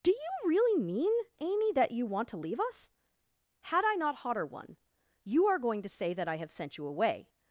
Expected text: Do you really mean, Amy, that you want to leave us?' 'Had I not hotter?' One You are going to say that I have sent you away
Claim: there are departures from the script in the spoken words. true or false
false